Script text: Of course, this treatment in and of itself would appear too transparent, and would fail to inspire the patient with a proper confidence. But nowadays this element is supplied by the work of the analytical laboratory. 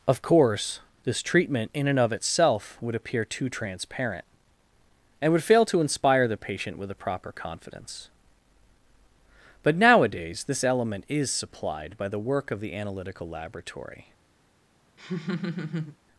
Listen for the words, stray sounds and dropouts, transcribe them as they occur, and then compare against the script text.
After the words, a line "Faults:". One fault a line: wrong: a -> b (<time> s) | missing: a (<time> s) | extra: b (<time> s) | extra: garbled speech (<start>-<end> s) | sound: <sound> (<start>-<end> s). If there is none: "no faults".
Of course, this treatment in and of itself would appear too transparent, and would fail to inspire the patient with a proper confidence. But nowadays this element is supplied by the work of the analytical laboratory.
Faults:
sound: laugh (15.0-16.0 s)